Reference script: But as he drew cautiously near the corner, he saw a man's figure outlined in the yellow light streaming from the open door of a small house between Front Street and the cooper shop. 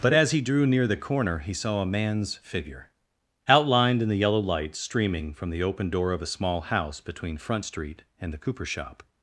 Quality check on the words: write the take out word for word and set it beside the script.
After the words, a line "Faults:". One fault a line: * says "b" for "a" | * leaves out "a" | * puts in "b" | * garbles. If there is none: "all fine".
But as he drew near the corner, he saw a man's figure outlined in the yellow light streaming from the open door of a small house between Front Street and the cooper shop.
Faults:
* leaves out "cautiously"